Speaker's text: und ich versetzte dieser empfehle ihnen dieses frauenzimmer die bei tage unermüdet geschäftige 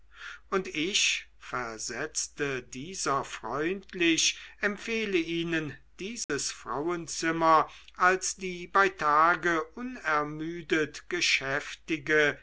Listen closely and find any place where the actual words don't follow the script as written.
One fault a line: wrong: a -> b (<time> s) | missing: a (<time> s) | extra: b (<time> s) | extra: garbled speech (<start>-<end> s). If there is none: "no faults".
extra: freundlich (3.2 s)
extra: als (8.0 s)